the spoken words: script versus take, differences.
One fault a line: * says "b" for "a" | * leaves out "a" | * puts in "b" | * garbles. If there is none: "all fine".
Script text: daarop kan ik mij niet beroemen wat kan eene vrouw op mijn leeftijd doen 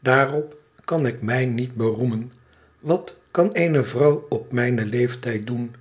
all fine